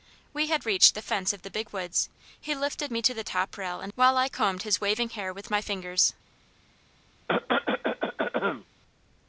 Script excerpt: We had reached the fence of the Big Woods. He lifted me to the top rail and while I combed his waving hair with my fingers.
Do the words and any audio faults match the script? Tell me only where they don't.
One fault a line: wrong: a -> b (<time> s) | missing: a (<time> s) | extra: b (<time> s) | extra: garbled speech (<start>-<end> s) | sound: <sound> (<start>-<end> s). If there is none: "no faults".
sound: cough (7.3-8.6 s)